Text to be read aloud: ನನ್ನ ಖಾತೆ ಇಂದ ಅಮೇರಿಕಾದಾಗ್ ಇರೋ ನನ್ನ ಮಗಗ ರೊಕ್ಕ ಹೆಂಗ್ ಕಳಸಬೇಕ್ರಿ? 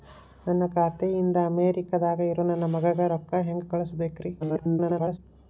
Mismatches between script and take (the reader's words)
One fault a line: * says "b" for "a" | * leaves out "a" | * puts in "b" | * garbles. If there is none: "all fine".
* garbles